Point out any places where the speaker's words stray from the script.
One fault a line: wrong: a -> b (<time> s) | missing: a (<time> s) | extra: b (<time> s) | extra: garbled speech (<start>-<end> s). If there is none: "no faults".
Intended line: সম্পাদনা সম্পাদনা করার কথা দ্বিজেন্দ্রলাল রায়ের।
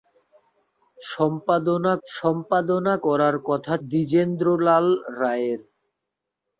no faults